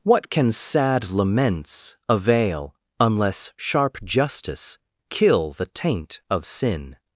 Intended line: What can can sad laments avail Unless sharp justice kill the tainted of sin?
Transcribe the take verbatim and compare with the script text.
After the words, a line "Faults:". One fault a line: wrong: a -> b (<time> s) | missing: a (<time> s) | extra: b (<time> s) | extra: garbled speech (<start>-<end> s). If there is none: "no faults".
What can sad laments avail Unless sharp justice kill the taint of sin?
Faults:
missing: can (0.5 s)
wrong: tainted -> taint (5.7 s)